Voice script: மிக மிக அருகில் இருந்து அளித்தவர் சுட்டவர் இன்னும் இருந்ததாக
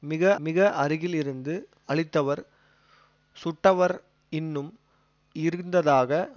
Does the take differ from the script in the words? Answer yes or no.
no